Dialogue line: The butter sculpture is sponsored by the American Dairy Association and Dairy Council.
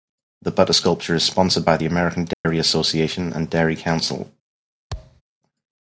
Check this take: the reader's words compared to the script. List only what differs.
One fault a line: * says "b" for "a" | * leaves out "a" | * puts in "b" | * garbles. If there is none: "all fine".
all fine